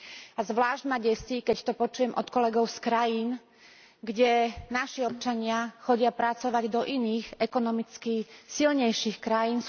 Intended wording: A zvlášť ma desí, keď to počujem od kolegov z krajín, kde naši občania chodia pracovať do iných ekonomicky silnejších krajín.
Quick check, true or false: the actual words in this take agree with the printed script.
true